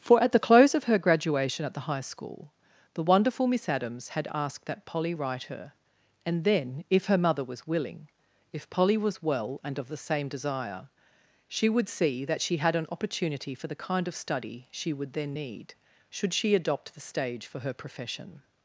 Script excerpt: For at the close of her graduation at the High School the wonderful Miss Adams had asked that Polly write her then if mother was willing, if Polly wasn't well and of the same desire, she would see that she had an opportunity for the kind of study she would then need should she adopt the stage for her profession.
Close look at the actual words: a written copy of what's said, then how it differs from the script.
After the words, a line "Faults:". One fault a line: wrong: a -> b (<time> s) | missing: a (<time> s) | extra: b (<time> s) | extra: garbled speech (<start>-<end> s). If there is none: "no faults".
For at the close of her graduation at the High School the wonderful Miss Adams had asked that Polly write her and then if her mother was willing, if Polly was well and of the same desire, she would see that she had an opportunity for the kind of study she would then need should she adopt the stage for her profession.
Faults:
extra: and (6.2 s)
extra: her (7.1 s)
wrong: wasn't -> was (9.0 s)